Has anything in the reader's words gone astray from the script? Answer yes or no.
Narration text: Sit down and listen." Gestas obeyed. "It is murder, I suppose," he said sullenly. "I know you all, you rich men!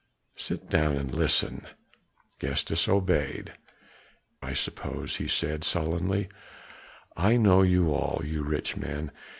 yes